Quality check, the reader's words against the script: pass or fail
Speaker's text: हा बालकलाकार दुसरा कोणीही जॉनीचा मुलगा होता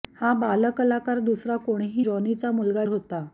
pass